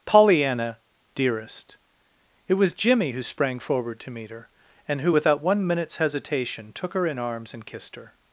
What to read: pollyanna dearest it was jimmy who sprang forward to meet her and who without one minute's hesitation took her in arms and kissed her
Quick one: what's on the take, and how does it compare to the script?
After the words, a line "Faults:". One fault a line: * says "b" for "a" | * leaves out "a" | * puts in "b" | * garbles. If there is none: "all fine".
pollyanna dearest it was jimmy who sprang forward to meet her and who without one minute's hesitation took her in arms and kissed her
Faults:
all fine